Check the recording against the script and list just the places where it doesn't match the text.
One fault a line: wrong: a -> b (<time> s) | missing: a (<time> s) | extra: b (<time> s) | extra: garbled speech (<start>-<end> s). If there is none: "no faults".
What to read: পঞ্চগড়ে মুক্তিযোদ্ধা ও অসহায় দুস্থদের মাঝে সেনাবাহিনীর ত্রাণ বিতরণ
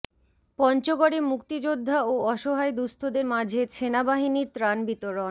no faults